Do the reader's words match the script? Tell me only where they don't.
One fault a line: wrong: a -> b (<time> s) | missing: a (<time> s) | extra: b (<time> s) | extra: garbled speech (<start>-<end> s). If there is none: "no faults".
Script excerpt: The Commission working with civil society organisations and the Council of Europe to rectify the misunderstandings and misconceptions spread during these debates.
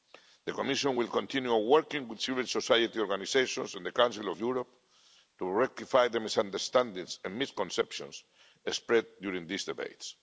extra: will continue (1.0 s)